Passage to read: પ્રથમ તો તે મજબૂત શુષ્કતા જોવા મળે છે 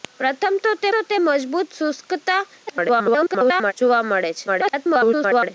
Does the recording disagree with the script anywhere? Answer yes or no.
yes